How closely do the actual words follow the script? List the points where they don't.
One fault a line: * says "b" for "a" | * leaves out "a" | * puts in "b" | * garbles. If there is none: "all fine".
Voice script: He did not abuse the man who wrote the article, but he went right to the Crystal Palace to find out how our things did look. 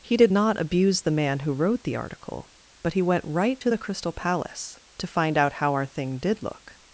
* says "thing" for "things"